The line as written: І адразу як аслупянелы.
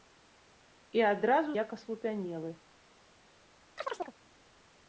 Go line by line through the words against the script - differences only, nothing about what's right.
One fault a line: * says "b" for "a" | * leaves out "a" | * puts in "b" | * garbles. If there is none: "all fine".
all fine